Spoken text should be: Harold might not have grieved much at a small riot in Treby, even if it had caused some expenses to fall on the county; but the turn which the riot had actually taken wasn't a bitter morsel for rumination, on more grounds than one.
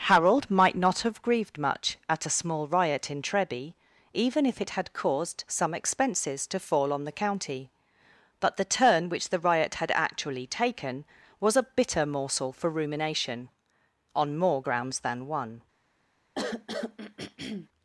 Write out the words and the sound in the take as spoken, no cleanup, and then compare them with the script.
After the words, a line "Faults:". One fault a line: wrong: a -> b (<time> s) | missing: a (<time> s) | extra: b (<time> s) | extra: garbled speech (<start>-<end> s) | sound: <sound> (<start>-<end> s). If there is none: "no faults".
Harold might not have grieved much at a small riot in Treby, even if it had caused some expenses to fall on the county; but the turn which the riot had actually taken was a bitter morsel for rumination, on more grounds than one.
Faults:
wrong: wasn't -> was (11.4 s)
sound: throat clearing (16.3-17.7 s)